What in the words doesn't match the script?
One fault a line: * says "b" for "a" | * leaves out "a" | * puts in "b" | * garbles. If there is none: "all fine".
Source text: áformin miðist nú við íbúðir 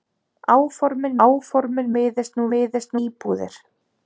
* puts in "áformin"
* says "miðist" for "við"